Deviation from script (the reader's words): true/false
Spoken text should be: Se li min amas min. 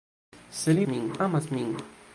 false